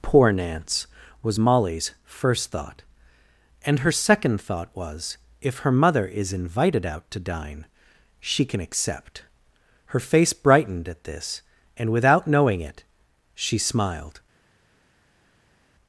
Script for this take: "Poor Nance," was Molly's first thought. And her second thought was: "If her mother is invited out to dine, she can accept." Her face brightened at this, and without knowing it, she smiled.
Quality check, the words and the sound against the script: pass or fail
pass